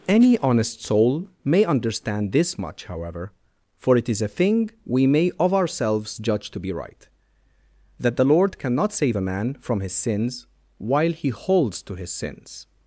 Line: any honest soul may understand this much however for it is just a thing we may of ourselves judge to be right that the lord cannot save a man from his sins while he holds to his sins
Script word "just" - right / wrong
wrong